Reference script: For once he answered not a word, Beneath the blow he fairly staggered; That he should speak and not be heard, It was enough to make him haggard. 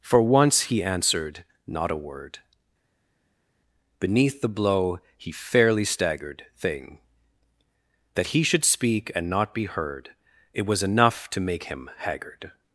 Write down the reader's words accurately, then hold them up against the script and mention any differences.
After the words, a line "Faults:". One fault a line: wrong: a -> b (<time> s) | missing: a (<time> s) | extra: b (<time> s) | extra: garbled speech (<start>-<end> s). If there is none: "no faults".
For once he answered not a word, Beneath the blow he fairly staggered; thing That he should speak and not be heard, It was enough to make him haggard.
Faults:
extra: thing (6.6 s)